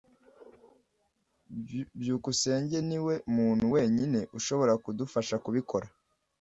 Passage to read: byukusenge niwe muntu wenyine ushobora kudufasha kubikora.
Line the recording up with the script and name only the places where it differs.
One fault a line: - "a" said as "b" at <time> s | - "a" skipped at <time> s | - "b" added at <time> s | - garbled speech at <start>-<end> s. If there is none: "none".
none